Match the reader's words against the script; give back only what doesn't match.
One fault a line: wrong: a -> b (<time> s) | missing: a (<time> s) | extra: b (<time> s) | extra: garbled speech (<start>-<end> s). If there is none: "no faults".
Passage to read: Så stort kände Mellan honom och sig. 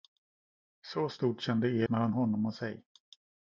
no faults